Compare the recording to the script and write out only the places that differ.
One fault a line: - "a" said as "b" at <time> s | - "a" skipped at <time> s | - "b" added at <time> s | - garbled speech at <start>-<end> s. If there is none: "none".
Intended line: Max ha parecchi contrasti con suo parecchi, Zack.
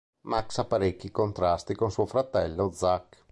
- "parecchi" said as "fratello" at 2.0 s